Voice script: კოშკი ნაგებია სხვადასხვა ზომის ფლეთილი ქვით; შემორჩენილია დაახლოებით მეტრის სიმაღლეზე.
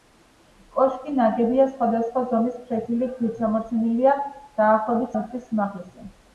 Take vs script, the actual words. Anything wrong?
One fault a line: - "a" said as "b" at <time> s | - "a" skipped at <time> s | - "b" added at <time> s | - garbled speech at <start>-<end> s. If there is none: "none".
none